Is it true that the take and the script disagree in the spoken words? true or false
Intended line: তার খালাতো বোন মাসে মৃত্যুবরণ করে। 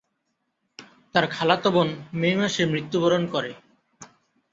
true